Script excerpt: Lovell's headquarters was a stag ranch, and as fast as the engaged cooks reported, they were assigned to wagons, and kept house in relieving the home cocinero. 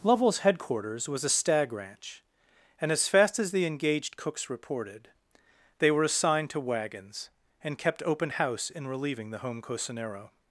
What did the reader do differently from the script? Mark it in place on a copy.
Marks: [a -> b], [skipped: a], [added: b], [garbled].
Lovell's headquarters was a stag ranch, and as fast as the engaged cooks reported, they were assigned to wagons, and kept [added: open] house in relieving the home cocinero.